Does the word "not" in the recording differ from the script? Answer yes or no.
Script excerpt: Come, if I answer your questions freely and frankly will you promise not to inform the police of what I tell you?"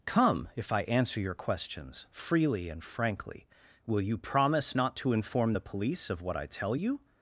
no